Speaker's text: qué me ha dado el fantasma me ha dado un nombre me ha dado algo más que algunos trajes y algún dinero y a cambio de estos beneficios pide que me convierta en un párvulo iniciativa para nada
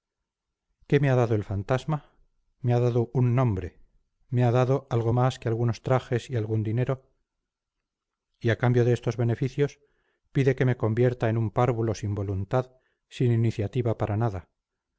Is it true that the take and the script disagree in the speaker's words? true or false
true